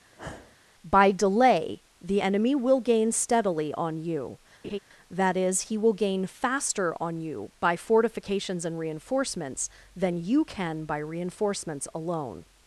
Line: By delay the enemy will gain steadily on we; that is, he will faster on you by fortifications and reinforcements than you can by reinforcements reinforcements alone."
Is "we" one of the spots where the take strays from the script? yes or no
yes